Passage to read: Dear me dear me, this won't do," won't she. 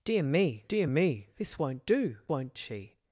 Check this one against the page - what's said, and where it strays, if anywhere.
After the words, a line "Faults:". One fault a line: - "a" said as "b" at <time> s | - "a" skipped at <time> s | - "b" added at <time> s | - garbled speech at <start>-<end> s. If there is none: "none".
Dear me dear me, this won't do," won't she.
Faults:
none